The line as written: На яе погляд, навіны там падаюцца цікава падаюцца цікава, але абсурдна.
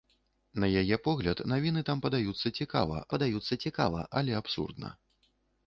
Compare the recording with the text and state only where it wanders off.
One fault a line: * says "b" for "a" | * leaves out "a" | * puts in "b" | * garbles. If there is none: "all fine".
all fine